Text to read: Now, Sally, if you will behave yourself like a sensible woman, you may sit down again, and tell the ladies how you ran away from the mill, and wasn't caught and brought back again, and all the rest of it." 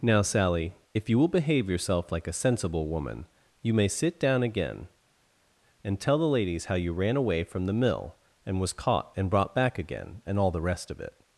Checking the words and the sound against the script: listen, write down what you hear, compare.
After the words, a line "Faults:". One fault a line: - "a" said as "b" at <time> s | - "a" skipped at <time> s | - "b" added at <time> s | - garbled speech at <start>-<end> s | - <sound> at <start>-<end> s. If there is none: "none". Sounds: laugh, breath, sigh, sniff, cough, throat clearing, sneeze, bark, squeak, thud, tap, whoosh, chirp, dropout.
Now, Sally, if you will behave yourself like a sensible woman, you may sit down again, and tell the ladies how you ran away from the mill, and was caught and brought back again, and all the rest of it."
Faults:
- "wasn't" said as "was" at 8.6 s